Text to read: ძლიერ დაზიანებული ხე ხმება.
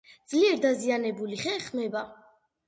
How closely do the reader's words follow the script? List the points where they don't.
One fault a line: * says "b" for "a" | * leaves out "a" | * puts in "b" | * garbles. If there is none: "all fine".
all fine